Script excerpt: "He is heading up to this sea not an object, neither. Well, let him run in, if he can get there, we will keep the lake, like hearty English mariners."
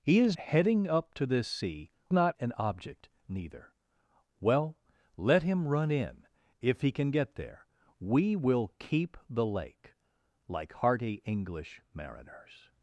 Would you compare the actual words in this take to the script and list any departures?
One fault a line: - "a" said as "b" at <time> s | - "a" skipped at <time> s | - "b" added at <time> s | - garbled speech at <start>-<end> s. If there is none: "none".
none